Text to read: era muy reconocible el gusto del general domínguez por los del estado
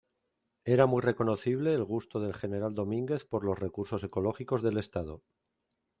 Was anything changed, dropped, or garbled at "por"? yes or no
no